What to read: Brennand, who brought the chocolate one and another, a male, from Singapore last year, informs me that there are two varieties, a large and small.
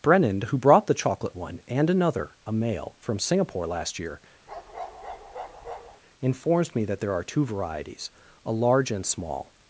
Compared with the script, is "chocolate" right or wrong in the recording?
right